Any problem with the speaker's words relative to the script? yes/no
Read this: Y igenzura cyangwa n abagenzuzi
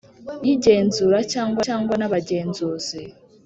yes